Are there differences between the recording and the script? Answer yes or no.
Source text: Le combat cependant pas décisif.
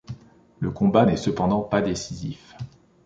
yes